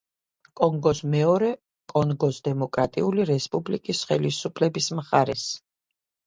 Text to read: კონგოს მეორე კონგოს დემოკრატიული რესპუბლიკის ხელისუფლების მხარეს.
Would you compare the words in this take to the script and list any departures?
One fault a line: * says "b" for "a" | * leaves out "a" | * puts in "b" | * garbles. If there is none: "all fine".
all fine